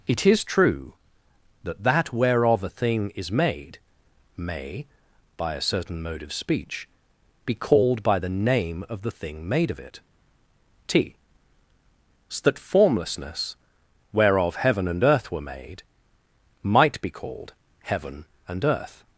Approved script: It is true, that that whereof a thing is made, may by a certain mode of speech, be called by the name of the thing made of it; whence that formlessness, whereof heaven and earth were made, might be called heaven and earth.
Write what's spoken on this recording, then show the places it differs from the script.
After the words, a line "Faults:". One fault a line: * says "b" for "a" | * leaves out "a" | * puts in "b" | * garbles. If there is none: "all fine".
It is true, that that whereof a thing is made, may by a certain mode of speech, be called by the name of the thing made of it; t so that formlessness, whereof heaven and earth were made, might be called heaven and earth.
Faults:
* says "t so" for "whence"